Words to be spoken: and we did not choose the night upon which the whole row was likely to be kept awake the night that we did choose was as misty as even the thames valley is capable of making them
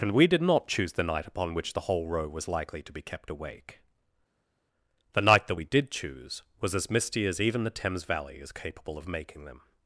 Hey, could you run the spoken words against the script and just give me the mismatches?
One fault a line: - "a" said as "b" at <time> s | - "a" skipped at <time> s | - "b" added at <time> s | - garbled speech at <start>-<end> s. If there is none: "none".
none